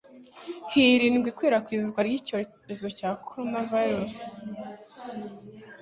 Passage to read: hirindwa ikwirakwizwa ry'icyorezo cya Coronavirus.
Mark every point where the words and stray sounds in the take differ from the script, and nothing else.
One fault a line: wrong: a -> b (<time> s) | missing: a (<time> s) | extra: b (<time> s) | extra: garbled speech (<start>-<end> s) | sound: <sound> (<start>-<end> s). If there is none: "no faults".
no faults